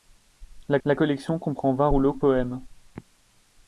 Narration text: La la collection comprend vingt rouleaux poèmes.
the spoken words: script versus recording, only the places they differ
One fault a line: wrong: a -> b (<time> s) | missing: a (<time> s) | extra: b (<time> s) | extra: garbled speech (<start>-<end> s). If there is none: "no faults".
no faults